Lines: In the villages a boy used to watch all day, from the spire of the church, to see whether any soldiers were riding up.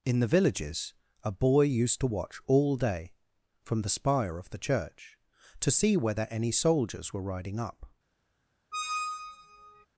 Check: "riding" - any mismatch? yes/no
no